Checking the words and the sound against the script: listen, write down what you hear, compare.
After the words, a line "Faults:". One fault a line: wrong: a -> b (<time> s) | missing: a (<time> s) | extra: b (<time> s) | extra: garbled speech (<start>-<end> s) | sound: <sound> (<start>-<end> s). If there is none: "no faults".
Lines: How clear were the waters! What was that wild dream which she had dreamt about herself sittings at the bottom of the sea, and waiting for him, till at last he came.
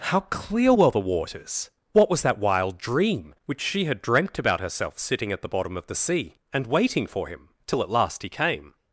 How clear were the waters! What was that wild dream which she had dreamt about herself sitting at the bottom of the sea, and waiting for him, till at last he came.
Faults:
wrong: sittings -> sitting (5.0 s)